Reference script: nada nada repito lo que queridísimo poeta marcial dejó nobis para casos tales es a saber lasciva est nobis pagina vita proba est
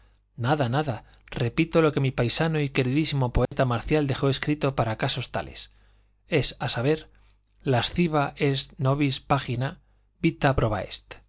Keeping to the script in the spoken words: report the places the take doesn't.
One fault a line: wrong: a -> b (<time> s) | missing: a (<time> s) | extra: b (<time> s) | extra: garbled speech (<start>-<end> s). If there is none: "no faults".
extra: mi paisano y (2.0 s)
wrong: nobis -> escrito (4.3 s)